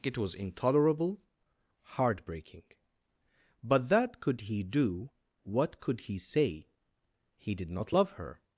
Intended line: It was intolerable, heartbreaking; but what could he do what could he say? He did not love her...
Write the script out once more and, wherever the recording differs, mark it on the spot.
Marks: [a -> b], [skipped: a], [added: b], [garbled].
It was intolerable, heartbreaking; but [what -> that] could he do what could he say? He did not love her...